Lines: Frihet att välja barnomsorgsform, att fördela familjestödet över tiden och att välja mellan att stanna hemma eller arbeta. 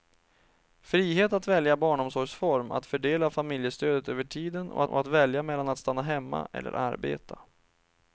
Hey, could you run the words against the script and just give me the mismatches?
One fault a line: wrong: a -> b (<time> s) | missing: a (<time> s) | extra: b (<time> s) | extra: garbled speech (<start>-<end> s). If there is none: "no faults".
extra: och (4.9 s)